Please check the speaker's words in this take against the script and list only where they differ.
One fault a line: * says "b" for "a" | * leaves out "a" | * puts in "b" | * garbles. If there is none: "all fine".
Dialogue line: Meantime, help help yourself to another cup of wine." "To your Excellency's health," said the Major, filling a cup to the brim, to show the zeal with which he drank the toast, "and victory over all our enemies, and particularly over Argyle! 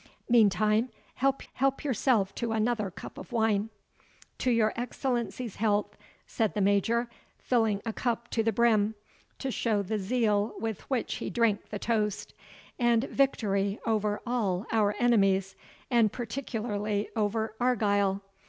all fine